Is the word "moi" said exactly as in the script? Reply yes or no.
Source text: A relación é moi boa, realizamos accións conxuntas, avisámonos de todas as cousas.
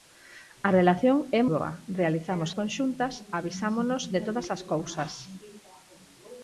no